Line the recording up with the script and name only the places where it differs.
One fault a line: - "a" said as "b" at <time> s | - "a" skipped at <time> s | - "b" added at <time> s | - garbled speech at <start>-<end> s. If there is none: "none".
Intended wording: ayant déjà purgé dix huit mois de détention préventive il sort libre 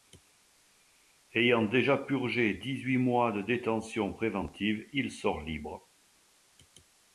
none